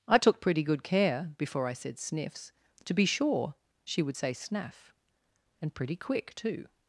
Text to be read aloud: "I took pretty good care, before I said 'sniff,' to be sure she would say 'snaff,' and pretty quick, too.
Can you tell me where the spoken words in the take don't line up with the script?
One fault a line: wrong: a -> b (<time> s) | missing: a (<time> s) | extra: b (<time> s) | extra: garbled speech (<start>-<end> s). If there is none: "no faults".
wrong: sniff -> sniffs (2.0 s)